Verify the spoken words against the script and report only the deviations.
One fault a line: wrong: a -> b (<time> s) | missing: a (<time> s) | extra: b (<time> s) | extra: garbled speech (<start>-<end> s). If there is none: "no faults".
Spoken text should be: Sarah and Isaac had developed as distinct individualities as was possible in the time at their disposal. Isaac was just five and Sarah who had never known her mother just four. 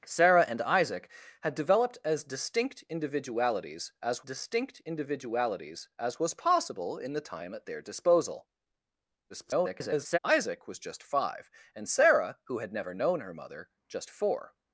extra: distinct individualities as (4.2 s)
extra: garbled speech (9.3-10.2 s)